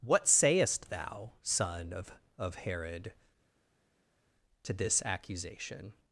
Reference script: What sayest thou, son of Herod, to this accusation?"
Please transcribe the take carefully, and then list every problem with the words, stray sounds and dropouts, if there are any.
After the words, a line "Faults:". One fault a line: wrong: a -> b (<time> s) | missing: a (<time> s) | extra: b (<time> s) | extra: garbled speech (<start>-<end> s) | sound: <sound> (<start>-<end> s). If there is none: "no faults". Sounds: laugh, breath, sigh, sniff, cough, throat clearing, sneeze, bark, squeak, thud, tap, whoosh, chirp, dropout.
What sayest thou, son of of Herod, to this accusation?"
Faults:
extra: of (2.4 s)